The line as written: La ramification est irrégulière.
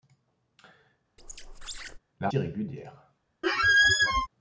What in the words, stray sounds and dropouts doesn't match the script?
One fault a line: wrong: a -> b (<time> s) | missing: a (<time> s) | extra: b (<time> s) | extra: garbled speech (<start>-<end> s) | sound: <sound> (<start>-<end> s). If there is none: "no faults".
sound: squeak (1.2-2.0 s)
missing: ramification est (2.3 s)
sound: squeak (3.4-4.3 s)